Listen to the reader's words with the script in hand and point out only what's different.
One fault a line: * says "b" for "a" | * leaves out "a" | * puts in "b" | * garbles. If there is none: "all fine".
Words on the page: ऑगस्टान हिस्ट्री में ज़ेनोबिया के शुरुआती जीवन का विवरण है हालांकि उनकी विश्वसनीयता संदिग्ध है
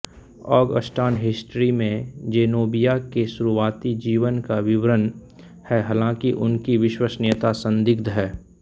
all fine